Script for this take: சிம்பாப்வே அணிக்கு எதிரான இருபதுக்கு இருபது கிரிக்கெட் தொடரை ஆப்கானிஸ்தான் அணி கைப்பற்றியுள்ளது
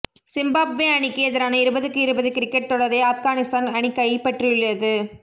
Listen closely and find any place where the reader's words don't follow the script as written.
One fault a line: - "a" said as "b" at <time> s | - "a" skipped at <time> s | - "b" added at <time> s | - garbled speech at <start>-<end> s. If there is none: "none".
none